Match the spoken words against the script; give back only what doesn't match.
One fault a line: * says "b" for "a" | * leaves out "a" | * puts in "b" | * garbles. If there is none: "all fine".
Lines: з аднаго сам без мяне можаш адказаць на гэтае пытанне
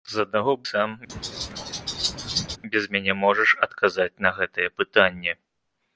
all fine